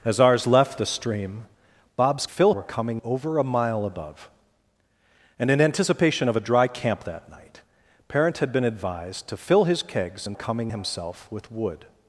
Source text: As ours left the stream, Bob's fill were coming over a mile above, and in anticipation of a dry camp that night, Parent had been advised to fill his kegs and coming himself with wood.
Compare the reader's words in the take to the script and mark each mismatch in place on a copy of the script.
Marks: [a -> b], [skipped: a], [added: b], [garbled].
As ours left the stream, Bob's fill were coming over a mile above, and in anticipation of a dry camp that night, Parent had been advised to fill his kegs and coming himself with wood.